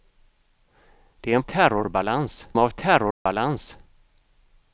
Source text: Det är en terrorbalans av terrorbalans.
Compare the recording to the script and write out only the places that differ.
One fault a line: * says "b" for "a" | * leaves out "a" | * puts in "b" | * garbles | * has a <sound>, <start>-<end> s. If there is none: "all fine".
* has a dropout, 3.1-3.3 s